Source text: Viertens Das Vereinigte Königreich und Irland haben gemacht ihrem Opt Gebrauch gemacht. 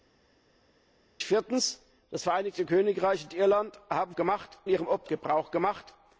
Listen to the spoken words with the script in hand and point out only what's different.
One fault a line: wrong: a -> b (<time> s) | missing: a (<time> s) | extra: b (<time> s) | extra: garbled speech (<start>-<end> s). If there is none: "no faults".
no faults